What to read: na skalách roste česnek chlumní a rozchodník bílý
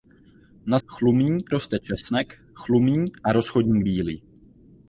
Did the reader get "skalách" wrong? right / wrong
wrong